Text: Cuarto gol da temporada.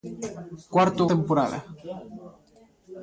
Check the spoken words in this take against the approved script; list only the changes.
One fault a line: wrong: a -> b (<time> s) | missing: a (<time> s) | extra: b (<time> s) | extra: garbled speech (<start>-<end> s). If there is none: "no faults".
missing: gol da (1.0 s)